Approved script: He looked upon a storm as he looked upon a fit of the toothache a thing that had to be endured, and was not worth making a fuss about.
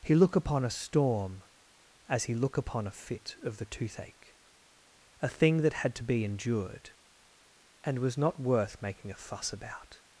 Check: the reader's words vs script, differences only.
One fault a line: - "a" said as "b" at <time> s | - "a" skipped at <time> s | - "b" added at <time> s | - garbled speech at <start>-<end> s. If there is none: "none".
- "looked" said as "look" at 0.1 s
- "looked" said as "look" at 2.3 s